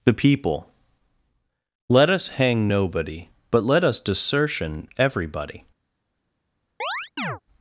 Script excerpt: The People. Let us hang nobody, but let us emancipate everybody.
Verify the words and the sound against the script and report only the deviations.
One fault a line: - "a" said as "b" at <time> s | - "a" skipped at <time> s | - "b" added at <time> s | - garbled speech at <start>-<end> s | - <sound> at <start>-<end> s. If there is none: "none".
- "emancipate" said as "desertion" at 4.0 s
- chirp at 6.8-7.4 s